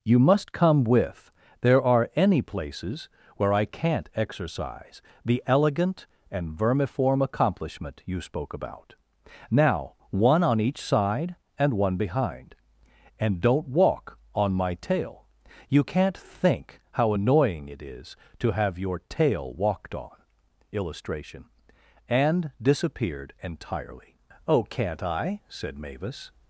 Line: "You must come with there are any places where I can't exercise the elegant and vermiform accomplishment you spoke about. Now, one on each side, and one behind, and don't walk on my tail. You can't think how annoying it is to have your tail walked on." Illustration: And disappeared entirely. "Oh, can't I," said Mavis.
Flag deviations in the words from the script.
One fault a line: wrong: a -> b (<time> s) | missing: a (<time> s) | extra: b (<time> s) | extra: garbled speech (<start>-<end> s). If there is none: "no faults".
no faults